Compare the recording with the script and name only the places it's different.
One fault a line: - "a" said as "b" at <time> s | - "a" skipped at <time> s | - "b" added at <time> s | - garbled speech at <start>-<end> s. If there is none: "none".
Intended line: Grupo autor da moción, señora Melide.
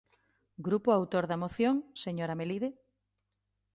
none